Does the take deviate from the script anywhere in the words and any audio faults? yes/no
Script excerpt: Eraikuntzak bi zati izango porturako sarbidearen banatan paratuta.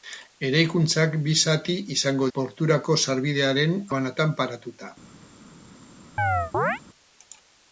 yes